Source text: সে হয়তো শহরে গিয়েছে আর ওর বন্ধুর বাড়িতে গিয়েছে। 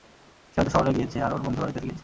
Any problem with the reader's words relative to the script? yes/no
no